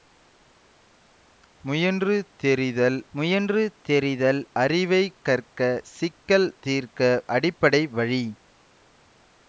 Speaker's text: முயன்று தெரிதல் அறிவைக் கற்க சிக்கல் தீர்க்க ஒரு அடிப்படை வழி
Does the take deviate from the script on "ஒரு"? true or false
true